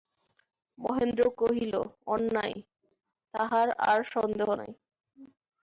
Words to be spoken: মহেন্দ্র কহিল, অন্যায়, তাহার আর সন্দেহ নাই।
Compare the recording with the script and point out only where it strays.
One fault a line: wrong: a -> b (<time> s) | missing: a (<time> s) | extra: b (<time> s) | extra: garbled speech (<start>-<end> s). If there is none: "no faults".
no faults